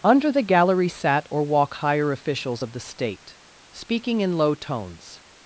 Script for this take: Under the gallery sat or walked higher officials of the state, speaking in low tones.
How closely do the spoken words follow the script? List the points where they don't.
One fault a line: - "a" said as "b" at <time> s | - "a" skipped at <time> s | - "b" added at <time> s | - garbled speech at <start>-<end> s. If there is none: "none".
- "walked" said as "walk" at 1.4 s